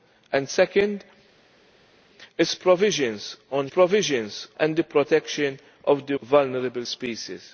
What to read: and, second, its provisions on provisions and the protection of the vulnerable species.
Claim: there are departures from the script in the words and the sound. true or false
false